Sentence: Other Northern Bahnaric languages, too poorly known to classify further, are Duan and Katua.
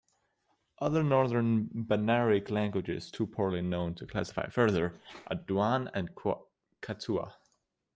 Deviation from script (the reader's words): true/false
false